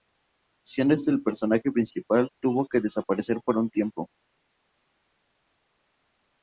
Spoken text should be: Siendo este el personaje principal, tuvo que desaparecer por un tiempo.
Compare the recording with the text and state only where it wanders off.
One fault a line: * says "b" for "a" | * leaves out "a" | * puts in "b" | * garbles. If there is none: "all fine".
all fine